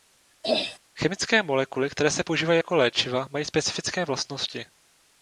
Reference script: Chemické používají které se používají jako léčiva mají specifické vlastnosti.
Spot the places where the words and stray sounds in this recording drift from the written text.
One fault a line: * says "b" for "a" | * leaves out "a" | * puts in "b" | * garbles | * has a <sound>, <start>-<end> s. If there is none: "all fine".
* has a throat clearing, 0.4-0.8 s
* says "molekuly" for "používají"